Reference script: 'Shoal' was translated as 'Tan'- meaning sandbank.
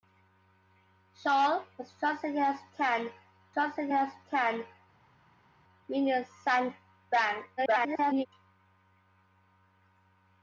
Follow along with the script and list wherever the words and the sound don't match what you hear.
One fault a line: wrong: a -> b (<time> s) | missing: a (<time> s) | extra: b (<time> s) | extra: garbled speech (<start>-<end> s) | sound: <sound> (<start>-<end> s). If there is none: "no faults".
extra: translated as Tan (3.5 s)
extra: garbled speech (7.6-8.3 s)